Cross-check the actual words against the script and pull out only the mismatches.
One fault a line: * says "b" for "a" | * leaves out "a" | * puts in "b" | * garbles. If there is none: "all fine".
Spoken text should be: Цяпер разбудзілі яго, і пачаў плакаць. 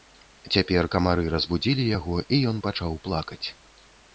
* puts in "камары"
* puts in "ён"